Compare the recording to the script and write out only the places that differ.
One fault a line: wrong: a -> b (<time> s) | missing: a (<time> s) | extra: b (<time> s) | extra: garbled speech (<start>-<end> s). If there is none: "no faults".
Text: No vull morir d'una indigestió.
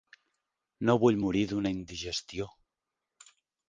no faults